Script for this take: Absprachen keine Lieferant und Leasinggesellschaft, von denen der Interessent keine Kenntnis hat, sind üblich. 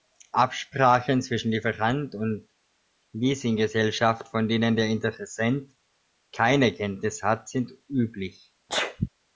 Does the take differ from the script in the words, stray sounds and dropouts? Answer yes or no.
yes